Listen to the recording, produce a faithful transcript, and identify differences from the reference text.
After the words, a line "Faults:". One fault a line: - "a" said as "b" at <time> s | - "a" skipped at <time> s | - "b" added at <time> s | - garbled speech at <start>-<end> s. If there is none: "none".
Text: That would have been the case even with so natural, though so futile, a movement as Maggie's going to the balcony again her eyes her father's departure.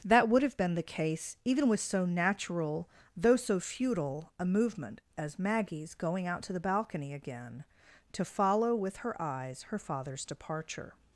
That would have been the case even with so natural, though so futile, a movement as Maggie's going out to the balcony again to follow with her eyes her father's departure.
Faults:
- "out" added at 6.2 s
- "to follow with" added at 8.1 s